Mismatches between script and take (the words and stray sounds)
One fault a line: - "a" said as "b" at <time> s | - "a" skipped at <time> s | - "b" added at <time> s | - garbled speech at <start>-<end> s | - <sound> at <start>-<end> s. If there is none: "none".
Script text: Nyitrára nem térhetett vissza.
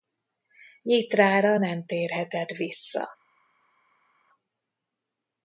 none